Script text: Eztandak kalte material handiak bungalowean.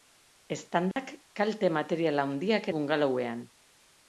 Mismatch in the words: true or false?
false